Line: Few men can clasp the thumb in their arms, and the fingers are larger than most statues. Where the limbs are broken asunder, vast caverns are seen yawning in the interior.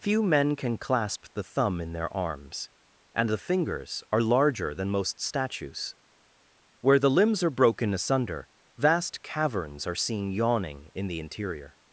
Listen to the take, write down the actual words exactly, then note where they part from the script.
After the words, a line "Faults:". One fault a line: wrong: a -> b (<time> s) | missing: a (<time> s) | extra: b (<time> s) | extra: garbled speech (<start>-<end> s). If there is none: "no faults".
Few men can clasp the thumb in their arms, and the fingers are larger than most statues. Where the limbs are broken asunder, vast caverns are seen yawning in the interior.
Faults:
no faults